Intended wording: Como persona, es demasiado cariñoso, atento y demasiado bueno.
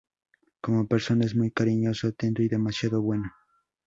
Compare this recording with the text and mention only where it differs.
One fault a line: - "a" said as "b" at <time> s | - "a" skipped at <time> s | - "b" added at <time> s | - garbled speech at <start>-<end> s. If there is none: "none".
- "demasiado" said as "muy" at 1.4 s